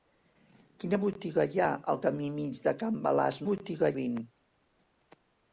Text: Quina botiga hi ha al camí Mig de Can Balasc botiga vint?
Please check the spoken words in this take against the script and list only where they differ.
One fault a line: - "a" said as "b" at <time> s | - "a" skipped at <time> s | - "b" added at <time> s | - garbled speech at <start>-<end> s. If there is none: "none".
none